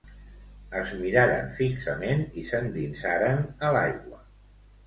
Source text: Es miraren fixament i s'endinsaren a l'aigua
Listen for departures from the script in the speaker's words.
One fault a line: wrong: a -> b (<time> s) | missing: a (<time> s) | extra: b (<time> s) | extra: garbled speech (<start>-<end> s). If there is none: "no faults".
no faults